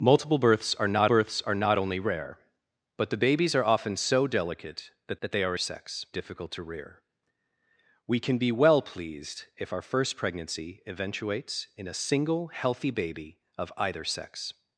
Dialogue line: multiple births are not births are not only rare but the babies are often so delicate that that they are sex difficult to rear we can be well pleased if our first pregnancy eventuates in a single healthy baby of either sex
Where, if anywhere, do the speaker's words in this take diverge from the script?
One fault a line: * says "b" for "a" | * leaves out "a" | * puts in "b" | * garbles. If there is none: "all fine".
all fine